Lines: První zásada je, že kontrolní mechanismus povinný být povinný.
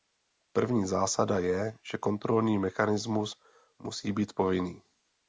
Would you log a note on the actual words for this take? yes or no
yes